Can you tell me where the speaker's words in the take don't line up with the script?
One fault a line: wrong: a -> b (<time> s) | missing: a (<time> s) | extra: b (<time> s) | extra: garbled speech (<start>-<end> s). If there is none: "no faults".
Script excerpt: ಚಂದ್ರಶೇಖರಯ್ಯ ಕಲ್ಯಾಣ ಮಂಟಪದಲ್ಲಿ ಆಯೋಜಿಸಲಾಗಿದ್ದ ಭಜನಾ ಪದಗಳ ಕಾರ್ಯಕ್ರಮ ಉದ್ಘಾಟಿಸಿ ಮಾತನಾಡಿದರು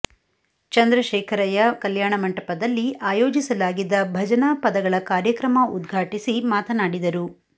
no faults